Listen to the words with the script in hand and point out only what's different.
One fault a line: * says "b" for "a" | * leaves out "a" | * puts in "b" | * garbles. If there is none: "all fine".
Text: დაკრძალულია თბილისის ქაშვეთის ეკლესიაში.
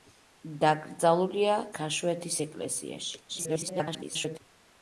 * leaves out "თბილისის"
* garbles